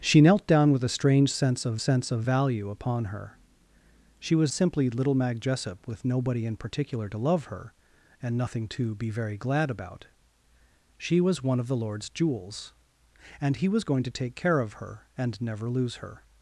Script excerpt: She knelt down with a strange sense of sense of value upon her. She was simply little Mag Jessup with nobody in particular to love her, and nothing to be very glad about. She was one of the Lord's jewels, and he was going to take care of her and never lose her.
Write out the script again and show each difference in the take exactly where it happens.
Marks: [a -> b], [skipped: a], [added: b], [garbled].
She knelt down with a strange sense of sense of value upon her. She was simply little Mag Jessup with nobody in particular to love her, and nothing to be very glad about. She was one of the Lord's jewels, and he was going to take care of her and never lose her.